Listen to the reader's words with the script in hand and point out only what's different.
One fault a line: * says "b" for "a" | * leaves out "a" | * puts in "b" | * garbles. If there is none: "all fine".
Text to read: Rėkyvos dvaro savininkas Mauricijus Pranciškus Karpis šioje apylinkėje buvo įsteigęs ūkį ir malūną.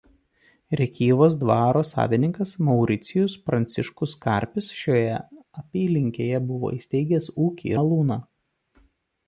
* leaves out "ir"